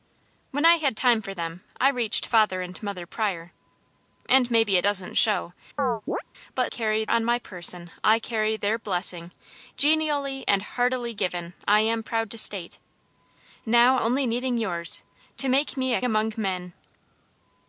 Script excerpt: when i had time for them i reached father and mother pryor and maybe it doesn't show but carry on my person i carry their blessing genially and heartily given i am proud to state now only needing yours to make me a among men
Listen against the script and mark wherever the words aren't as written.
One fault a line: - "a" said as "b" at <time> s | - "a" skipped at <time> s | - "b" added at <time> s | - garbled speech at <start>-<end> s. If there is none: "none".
none